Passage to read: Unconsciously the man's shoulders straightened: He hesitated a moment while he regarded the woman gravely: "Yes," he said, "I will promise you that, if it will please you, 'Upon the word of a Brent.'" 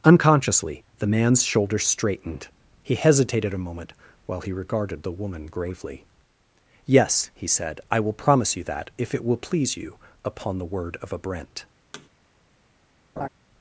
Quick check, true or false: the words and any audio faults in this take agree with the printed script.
false